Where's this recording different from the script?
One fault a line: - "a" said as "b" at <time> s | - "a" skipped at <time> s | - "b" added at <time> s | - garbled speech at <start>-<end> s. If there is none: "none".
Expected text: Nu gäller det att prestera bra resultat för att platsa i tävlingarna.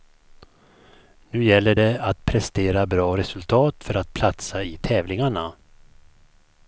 none